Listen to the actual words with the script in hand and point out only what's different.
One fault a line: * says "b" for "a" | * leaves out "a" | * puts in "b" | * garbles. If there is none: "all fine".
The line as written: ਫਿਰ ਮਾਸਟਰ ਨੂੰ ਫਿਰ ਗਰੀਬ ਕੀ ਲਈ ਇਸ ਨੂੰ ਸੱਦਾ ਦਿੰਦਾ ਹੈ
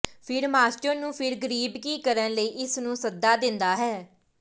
* puts in "ਕਰਨ"